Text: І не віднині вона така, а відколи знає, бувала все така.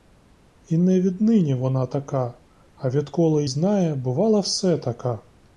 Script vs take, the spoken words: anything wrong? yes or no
no